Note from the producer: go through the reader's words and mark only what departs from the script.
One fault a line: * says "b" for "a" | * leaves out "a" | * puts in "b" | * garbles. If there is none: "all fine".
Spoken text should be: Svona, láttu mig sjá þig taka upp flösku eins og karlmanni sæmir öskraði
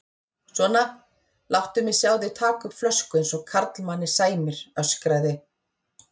all fine